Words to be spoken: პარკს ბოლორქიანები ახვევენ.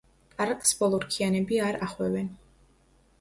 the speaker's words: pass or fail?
fail